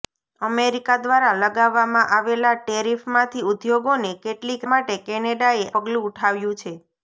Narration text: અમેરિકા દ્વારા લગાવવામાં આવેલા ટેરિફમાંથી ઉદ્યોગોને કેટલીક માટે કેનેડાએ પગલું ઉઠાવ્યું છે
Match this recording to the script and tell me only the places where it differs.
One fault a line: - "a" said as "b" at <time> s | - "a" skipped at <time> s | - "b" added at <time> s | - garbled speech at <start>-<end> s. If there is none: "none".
none